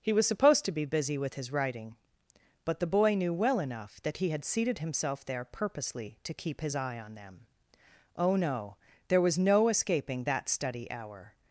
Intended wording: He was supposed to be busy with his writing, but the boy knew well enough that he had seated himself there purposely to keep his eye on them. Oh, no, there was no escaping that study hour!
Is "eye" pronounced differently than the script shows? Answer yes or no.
no